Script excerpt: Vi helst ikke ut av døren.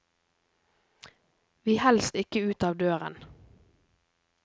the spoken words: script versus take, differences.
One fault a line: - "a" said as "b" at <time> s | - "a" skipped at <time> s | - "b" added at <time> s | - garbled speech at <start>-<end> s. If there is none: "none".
none